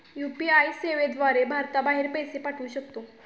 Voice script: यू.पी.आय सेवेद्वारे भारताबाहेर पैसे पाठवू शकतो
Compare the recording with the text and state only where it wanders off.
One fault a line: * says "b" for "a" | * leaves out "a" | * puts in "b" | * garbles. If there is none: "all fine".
all fine